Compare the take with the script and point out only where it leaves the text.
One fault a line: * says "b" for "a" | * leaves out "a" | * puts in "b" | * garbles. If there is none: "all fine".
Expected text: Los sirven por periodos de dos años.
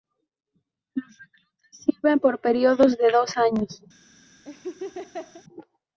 * puts in "reclutas"